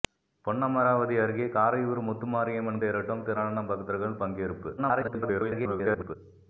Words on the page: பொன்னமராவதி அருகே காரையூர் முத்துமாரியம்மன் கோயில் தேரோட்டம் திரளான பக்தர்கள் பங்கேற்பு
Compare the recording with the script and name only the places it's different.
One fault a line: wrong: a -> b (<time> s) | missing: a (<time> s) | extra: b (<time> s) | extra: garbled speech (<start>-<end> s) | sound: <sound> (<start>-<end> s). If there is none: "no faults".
missing: கோயில் (2.8 s)
extra: garbled speech (4.8-6.2 s)